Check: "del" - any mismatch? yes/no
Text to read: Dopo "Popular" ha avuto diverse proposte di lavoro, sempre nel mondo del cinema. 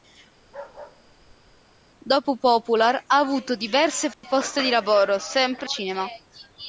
yes